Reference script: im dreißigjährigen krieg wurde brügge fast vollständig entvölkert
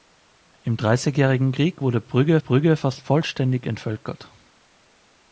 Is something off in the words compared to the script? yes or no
yes